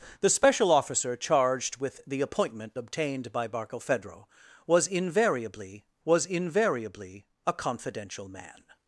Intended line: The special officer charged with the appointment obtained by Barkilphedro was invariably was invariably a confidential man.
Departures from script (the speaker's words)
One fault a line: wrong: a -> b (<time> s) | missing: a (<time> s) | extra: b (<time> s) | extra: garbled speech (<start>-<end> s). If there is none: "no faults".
no faults